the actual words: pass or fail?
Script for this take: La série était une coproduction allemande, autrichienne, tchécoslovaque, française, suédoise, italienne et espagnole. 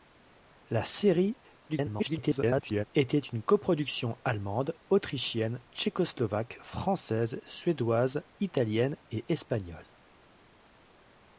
fail